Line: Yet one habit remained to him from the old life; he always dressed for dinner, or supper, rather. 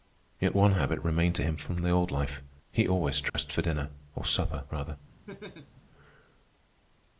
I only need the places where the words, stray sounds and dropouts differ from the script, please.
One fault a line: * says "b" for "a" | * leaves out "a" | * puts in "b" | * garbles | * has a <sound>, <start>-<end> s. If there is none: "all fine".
* has a dropout, 3.3-3.3 s
* has a laugh, 5.3-5.8 s